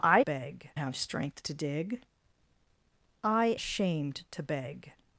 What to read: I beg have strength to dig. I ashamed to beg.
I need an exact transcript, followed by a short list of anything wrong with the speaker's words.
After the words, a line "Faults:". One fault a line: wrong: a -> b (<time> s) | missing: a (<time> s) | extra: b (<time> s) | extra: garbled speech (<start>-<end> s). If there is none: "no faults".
I beg have strength to dig. I ashamed to beg.
Faults:
no faults